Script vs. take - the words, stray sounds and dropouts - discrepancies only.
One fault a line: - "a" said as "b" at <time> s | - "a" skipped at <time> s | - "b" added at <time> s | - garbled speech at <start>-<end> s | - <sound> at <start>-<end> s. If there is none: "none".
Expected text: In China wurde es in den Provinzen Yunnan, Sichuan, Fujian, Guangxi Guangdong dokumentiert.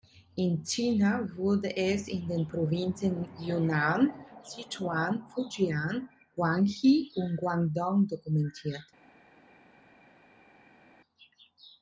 - "und" added at 7.2 s